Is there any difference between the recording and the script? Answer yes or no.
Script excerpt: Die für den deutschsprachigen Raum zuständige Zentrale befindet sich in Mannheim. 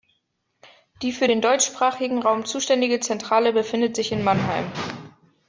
no